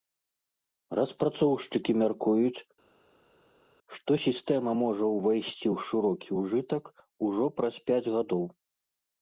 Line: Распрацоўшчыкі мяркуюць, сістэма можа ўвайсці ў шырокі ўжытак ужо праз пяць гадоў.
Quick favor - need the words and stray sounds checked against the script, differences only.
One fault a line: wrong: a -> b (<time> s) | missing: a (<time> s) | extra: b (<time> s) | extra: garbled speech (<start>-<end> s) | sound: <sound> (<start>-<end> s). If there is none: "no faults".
extra: што (4.0 s)